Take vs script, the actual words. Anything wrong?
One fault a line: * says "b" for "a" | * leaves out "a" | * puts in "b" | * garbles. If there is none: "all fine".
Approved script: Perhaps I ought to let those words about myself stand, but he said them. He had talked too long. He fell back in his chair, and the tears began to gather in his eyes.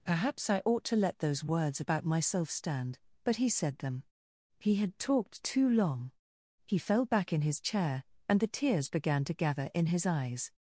all fine